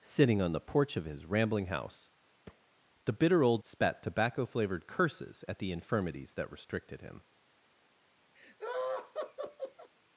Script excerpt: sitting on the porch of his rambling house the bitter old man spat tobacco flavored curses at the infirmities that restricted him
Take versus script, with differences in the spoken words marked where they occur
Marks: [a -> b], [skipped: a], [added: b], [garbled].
sitting on the porch of his rambling house the bitter old [skipped: man] spat tobacco flavored curses at the infirmities that restricted him